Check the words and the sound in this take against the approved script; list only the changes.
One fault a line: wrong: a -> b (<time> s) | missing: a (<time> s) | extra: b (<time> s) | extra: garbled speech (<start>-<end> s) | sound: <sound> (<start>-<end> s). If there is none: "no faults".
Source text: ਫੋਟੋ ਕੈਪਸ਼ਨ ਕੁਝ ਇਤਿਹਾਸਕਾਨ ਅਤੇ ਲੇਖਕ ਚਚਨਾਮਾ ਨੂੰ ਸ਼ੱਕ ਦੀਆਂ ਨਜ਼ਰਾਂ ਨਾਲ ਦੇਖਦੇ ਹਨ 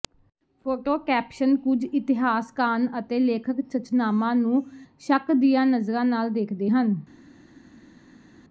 no faults